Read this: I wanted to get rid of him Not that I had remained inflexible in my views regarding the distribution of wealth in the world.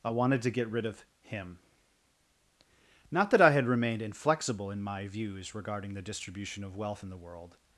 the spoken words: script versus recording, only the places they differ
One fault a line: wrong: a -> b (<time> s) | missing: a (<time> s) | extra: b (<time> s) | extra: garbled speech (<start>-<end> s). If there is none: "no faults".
no faults